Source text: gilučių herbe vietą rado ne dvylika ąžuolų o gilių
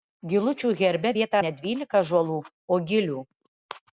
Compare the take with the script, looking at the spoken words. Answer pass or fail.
fail